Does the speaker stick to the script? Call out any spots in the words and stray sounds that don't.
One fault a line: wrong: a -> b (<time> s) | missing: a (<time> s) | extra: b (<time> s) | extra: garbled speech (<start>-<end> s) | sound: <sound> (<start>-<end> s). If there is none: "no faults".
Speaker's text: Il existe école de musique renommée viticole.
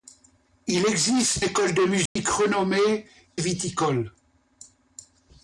sound: dropout (2.1-2.2 s)